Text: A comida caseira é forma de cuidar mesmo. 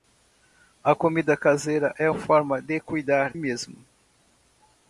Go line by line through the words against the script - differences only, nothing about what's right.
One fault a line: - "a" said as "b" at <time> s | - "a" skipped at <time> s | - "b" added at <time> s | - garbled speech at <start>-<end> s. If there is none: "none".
none